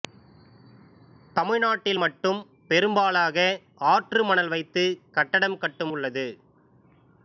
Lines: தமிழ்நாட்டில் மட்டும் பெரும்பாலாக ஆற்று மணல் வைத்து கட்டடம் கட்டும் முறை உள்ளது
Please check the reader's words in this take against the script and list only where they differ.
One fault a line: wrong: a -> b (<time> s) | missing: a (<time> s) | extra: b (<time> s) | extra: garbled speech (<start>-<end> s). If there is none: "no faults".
missing: முறை (5.9 s)